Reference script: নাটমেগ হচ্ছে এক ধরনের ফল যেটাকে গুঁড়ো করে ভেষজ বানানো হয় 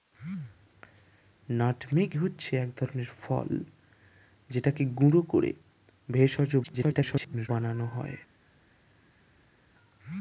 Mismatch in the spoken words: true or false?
true